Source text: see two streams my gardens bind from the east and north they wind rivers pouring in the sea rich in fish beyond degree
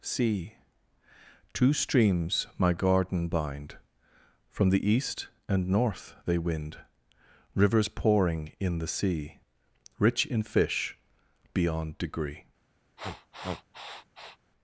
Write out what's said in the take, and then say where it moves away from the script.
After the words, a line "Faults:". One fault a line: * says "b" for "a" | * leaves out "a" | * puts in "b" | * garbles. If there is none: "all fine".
see two streams my garden bind from the east and north they wind rivers pouring in the sea rich in fish beyond degree
Faults:
* says "garden" for "gardens"